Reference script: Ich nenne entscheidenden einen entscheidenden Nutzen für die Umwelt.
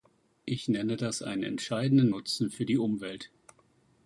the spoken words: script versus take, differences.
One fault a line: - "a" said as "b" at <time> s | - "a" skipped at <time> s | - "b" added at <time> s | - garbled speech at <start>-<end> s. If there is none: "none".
- "entscheidenden" said as "das" at 1.0 s